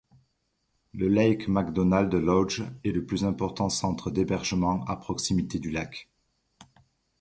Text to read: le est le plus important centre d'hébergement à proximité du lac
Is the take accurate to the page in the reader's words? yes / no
no